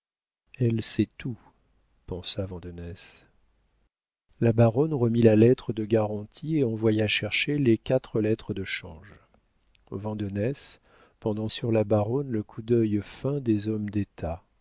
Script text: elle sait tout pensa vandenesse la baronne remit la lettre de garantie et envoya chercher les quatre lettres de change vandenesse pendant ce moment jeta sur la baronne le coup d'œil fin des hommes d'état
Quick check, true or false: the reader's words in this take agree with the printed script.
false